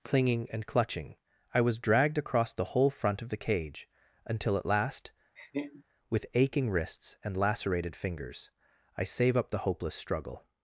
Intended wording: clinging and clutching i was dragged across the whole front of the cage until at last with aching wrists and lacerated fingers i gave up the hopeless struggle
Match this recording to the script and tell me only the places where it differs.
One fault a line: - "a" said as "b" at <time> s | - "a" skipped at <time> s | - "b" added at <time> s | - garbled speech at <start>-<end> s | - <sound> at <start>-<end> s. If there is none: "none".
- laugh at 5.4-5.8 s
- "gave" said as "save" at 9.1 s